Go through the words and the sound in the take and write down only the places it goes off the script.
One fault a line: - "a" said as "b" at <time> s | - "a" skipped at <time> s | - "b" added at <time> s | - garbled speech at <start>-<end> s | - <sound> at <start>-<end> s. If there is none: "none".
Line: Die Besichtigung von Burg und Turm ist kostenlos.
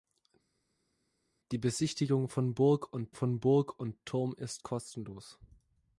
- "von Burg und" added at 3.1 s